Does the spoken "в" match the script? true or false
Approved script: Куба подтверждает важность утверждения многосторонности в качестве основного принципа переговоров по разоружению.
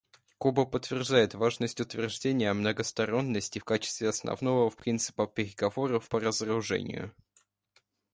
true